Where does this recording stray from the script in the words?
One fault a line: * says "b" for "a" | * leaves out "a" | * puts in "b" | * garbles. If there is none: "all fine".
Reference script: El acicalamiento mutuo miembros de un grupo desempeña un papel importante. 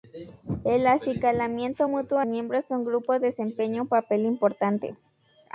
all fine